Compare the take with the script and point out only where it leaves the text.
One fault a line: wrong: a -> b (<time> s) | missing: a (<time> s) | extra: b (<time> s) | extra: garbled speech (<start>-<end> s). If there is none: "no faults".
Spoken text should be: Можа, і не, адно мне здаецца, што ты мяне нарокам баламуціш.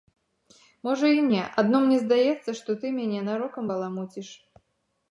no faults